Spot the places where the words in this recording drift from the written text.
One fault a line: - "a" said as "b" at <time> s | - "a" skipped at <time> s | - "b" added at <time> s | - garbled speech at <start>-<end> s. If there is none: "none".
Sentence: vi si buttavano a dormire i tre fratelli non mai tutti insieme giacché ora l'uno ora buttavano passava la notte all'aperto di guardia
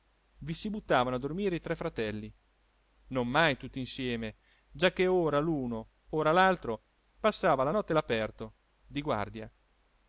- "buttavano" said as "l'altro" at 6.3 s